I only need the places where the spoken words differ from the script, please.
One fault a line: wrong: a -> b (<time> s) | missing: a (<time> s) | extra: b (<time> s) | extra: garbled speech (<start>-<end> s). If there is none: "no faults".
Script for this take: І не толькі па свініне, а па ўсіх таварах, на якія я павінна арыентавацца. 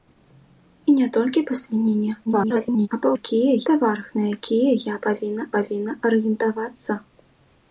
extra: garbled speech (2.3-2.9 s)
wrong: ўсіх -> якія (3.2 s)
extra: павінна (5.6 s)